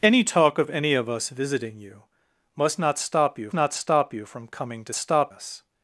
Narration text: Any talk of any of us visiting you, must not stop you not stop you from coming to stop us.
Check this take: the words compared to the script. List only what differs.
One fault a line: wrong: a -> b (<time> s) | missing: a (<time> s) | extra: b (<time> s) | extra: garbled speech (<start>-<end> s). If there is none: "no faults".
no faults